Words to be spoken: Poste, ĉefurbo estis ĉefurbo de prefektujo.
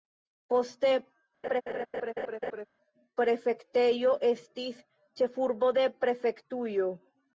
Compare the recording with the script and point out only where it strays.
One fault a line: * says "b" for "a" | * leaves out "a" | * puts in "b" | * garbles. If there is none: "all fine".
* says "prefektejo" for "ĉefurbo"